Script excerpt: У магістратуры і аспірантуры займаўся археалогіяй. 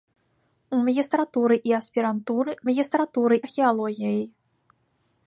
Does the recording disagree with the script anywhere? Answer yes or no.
yes